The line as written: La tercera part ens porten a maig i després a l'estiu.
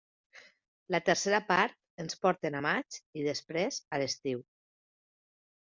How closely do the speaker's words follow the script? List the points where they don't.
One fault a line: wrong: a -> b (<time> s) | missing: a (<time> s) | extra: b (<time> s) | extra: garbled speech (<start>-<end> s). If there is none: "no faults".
no faults